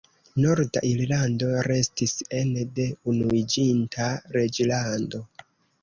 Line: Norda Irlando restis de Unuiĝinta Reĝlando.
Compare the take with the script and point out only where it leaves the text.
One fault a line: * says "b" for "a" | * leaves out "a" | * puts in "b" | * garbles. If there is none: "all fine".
* puts in "ene"